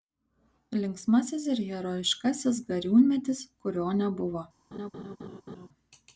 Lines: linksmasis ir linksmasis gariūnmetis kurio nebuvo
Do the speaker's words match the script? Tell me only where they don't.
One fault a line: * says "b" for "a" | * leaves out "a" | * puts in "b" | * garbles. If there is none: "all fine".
* says "herojiškasis" for "linksmasis"